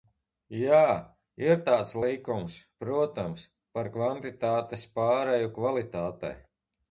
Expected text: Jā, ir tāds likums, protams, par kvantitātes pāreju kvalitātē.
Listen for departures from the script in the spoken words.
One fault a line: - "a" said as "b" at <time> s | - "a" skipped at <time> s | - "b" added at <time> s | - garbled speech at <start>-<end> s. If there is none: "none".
none